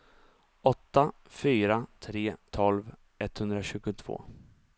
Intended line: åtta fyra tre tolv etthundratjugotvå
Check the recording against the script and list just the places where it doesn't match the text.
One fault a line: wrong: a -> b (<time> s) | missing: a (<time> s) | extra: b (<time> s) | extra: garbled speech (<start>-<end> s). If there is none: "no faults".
no faults